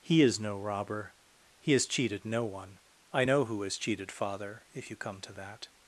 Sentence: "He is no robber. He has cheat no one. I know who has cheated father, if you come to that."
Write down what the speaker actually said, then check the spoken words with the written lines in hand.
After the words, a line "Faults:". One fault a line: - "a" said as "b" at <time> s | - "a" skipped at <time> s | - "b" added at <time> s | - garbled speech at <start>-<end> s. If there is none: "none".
"He is no robber. He has cheated no one. I know who has cheated father, if you come to that."
Faults:
- "cheat" said as "cheated" at 1.9 s